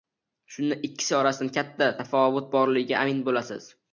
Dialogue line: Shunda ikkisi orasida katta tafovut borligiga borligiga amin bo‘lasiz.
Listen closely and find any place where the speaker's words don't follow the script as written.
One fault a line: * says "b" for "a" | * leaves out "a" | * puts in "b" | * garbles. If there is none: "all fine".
* leaves out "borligiga"